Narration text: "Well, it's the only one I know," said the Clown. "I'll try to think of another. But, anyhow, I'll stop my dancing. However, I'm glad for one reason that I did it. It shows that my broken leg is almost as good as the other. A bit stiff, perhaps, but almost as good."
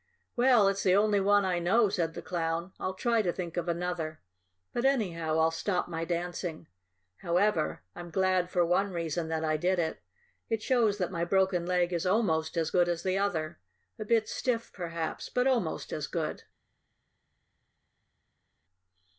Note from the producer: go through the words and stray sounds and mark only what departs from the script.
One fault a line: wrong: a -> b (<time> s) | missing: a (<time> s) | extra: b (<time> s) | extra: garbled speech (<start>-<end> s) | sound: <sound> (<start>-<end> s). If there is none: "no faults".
no faults